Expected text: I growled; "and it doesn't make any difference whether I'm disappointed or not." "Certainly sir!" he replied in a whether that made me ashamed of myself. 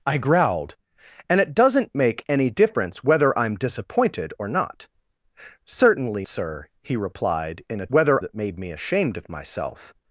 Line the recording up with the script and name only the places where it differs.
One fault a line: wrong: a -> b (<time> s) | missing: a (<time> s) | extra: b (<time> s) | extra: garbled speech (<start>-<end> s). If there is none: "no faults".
no faults